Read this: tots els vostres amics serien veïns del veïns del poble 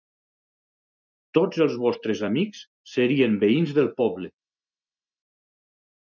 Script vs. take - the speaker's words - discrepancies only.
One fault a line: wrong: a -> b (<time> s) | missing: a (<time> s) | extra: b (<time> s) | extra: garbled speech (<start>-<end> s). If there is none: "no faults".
missing: veïns del (3.9 s)